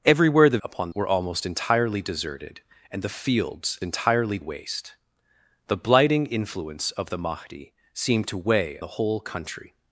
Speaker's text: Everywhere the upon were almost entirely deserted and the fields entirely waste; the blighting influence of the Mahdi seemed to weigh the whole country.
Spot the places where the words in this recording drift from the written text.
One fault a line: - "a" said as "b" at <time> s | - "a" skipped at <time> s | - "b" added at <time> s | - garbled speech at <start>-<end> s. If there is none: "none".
none